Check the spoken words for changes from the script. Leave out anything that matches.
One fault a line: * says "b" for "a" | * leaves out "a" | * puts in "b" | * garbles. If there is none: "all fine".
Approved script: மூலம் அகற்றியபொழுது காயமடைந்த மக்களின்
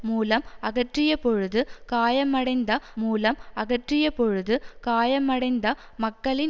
* puts in "மூலம் அகற்றியபொழுது காயமடைந்த"